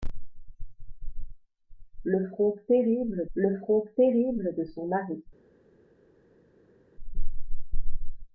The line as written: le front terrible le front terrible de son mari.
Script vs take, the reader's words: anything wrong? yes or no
no